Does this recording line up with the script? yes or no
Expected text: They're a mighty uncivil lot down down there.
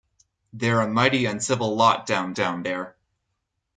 yes